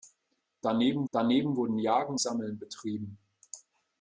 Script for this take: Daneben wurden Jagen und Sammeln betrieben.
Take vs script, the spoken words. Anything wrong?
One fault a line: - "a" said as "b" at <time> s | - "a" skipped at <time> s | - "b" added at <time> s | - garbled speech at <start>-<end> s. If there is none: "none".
- "daneben" added at 1.1 s
- "und" skipped at 2.2 s